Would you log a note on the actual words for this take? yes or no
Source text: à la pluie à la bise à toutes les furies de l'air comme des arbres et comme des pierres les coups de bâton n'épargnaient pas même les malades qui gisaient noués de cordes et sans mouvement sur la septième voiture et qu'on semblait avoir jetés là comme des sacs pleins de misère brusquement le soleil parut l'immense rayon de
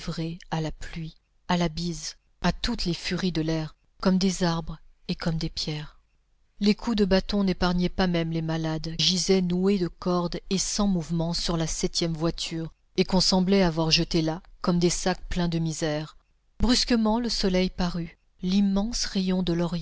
yes